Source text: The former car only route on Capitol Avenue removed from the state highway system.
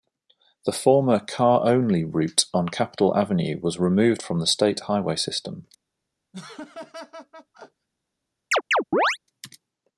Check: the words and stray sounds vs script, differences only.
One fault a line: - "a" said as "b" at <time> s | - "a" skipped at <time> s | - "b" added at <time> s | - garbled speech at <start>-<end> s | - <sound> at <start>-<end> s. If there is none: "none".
- "was" added at 3.6 s
- laugh at 6.3-7.9 s
- chirp at 8.5-9.2 s